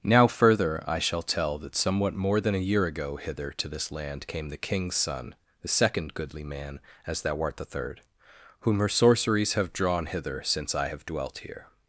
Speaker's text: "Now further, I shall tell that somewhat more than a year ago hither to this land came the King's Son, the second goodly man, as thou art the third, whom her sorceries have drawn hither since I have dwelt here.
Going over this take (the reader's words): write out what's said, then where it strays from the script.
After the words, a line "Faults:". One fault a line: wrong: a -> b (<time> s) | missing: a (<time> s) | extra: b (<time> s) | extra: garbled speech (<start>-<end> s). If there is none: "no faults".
"Now further, I shall tell that somewhat more than a year ago hither to this land came the King's Son, the second goodly man, as thou art the third, whom her sorceries have drawn hither since I have dwelt here.
Faults:
no faults